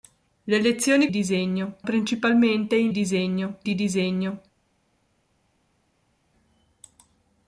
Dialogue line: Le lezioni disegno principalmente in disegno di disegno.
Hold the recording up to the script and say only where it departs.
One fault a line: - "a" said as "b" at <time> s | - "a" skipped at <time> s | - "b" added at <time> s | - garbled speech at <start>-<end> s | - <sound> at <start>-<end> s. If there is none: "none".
none